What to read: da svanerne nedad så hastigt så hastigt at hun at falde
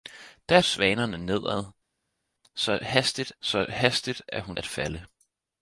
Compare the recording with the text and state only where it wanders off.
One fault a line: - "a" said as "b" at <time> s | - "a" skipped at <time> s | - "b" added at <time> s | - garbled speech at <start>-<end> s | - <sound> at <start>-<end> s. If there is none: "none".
none